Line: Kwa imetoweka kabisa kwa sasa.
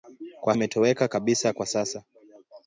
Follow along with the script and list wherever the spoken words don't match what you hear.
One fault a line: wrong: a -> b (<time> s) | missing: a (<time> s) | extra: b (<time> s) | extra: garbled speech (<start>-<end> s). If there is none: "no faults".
no faults